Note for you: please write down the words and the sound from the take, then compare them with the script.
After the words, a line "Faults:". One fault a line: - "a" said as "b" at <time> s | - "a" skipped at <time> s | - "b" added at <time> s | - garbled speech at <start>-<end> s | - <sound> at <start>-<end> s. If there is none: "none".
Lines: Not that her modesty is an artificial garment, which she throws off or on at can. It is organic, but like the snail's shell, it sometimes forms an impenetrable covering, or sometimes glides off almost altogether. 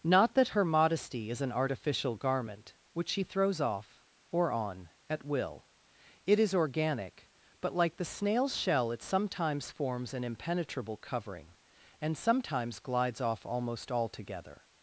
Not that her modesty is an artificial garment, which she throws off or on at will. It is organic, but like the snail's shell, it sometimes forms an impenetrable covering, and sometimes glides off almost altogether.
Faults:
- "can" said as "will" at 5.2 s
- "or" said as "and" at 12.0 s